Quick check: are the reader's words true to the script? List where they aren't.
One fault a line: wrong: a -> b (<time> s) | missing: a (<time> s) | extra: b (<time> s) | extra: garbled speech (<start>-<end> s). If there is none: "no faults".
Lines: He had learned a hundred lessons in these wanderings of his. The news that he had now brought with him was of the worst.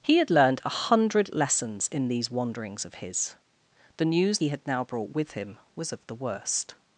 missing: that (4.4 s)